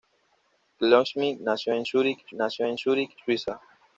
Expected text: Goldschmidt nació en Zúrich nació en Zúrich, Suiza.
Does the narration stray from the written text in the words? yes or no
no